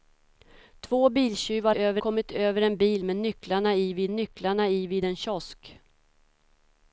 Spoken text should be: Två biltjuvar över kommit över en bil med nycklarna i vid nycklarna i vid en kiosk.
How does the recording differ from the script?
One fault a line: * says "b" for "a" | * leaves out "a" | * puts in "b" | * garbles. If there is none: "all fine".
all fine